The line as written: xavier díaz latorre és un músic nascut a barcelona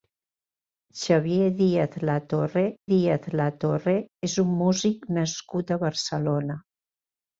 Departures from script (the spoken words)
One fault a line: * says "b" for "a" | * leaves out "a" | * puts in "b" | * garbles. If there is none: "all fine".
* puts in "díaz latorre"